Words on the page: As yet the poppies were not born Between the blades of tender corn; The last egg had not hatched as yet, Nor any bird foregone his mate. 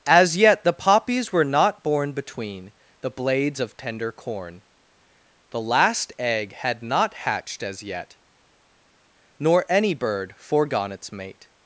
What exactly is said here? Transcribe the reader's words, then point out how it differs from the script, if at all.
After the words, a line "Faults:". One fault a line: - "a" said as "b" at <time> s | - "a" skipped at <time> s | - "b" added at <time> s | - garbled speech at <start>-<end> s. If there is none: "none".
As yet the poppies were not born Between the blades of tender corn; The last egg had not hatched as yet, Nor any bird foregone its mate.
Faults:
- "his" said as "its" at 10.9 s